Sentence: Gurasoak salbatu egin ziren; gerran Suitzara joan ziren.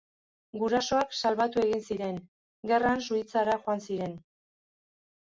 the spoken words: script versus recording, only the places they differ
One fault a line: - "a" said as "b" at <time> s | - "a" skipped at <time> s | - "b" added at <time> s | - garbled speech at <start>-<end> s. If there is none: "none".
none